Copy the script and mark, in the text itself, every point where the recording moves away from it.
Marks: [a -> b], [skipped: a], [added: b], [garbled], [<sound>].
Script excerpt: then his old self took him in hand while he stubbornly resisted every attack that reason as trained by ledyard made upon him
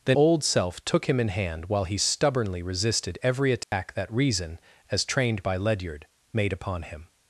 then [skipped: his] old self took him in hand while he stubbornly resisted every attack [dropout] that reason as trained by ledyard made upon him